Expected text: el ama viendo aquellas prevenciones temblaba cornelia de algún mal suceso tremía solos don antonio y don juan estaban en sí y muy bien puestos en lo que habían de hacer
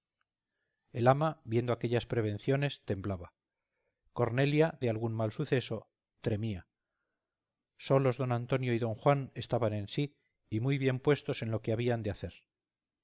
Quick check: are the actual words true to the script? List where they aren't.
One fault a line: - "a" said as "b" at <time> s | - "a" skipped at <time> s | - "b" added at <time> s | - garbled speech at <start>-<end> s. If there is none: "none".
none